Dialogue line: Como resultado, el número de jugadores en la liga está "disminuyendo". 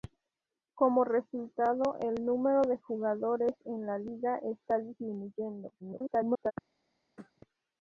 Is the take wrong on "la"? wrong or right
right